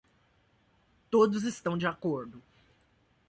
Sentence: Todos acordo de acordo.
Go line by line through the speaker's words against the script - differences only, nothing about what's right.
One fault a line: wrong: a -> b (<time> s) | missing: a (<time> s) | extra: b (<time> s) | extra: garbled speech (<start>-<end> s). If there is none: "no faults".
wrong: acordo -> estão (1.4 s)